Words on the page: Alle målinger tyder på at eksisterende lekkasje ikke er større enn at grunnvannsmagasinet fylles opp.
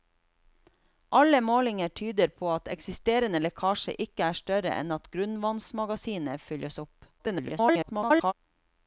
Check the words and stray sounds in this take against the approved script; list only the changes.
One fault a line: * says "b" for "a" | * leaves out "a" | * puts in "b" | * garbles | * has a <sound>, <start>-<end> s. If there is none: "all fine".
* garbles